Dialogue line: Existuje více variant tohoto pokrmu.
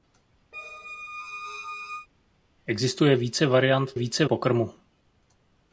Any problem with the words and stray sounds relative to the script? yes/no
yes